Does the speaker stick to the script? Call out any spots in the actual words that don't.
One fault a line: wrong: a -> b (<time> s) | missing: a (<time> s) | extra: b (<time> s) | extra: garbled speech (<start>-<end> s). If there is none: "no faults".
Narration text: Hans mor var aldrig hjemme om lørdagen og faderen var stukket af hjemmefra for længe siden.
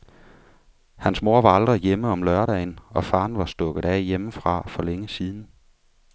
no faults